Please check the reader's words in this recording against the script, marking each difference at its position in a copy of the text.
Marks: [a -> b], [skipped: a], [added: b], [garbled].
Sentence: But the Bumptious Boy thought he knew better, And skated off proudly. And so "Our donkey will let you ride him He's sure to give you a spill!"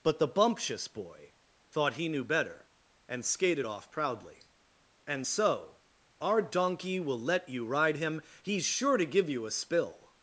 But the Bumptious Boy thought he knew better, And skated off proudly. And so "Our donkey will let you ride him He's sure to give you a spill!"